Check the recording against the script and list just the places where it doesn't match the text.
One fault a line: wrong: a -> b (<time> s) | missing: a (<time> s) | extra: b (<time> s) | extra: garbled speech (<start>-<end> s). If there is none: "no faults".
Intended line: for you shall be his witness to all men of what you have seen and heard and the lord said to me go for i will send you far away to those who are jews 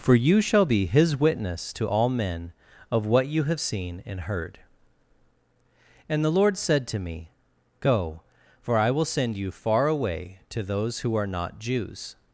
extra: not (11.2 s)